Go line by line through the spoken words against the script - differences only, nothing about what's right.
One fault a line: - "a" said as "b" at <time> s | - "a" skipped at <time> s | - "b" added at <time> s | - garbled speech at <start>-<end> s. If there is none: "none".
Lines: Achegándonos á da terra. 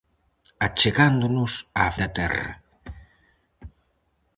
none